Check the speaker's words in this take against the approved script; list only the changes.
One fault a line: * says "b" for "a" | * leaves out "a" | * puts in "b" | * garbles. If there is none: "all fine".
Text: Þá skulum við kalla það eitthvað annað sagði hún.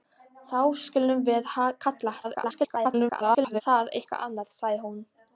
* garbles